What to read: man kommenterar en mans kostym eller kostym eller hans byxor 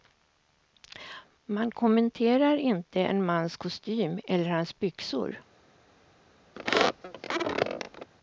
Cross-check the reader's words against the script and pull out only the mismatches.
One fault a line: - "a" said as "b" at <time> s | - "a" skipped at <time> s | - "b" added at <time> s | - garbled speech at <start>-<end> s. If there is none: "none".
- "inte" added at 2.6 s
- "kostym eller" skipped at 4.5 s